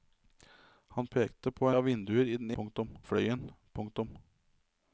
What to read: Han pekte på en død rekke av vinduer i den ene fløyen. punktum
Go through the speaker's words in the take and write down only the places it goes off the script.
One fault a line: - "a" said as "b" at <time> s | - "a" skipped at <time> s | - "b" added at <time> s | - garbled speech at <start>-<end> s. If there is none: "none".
- "en død rekke" skipped at 1.7 s
- "ene" said as "punktum" at 2.6 s